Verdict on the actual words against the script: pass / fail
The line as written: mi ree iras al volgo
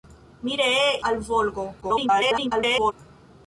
fail